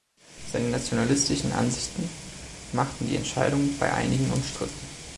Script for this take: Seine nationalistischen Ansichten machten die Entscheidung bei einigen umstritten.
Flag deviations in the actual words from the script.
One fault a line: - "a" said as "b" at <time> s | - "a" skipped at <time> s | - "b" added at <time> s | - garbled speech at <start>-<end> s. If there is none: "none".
none